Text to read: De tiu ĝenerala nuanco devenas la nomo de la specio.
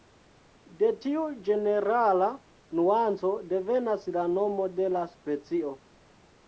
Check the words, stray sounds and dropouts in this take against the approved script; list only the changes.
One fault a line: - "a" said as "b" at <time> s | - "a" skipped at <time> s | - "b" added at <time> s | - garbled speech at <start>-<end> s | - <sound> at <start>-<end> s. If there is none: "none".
none